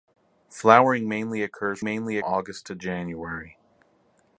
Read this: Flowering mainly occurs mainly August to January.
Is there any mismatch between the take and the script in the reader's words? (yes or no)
no